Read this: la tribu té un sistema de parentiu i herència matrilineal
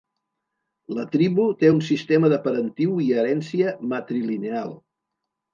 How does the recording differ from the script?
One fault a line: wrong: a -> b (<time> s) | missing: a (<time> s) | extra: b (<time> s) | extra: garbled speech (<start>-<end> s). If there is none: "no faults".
no faults